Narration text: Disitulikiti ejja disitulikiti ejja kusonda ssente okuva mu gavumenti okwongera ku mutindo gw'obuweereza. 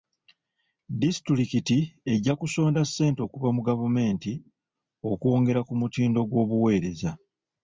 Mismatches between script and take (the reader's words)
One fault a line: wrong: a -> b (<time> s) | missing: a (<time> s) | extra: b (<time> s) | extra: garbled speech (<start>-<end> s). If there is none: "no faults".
missing: disitulikiti ejja (2.3 s)